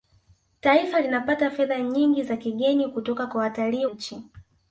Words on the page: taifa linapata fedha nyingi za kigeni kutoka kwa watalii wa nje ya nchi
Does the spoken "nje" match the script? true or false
false